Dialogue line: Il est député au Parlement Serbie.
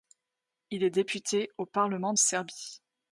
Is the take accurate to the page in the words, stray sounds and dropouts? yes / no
yes